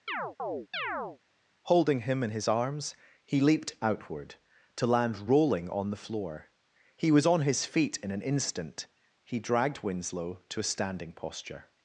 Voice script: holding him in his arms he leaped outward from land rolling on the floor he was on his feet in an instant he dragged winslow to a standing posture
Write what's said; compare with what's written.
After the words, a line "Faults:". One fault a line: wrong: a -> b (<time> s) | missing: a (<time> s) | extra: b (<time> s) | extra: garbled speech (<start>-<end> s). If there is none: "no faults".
holding him in his arms he leaped outward to land rolling on the floor he was on his feet in an instant he dragged winslow to a standing posture
Faults:
wrong: from -> to (4.8 s)